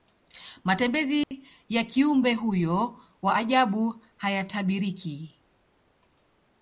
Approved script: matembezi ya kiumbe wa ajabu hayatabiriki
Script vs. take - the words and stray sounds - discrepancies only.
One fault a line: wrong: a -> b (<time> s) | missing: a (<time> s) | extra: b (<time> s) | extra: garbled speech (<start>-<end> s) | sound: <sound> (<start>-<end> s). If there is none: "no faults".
sound: dropout (1.2-1.3 s)
extra: huyo (2.3 s)